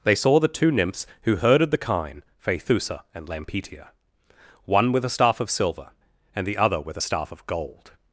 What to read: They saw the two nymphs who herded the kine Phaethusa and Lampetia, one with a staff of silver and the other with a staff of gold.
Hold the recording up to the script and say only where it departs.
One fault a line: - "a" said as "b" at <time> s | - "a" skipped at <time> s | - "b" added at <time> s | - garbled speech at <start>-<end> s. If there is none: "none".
none